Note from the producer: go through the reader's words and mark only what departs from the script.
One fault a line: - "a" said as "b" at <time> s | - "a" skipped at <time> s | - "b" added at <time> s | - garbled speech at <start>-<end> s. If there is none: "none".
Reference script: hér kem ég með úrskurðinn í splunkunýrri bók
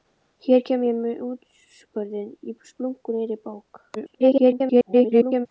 - garbled speech at 3.9-5.5 s